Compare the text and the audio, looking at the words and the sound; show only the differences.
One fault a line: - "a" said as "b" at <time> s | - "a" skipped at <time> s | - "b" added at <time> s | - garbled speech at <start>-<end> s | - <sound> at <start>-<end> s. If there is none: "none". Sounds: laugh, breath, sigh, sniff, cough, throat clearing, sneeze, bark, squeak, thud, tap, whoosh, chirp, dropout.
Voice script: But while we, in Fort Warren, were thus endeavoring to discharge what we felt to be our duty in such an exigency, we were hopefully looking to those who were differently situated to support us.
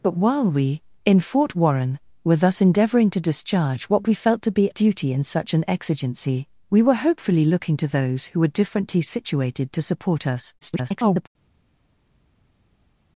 - "our" skipped at 4.7 s
- garbled speech at 10.6-11.3 s